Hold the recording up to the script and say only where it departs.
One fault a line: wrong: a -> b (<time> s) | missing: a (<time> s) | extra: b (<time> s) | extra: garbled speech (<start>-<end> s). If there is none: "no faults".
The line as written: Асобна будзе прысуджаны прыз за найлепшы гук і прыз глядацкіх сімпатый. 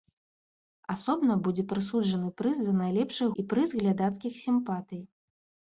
missing: гук (3.3 s)